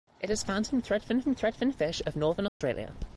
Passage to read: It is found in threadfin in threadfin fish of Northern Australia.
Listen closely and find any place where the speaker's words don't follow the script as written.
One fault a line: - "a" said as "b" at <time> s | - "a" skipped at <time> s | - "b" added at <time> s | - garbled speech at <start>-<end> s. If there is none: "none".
none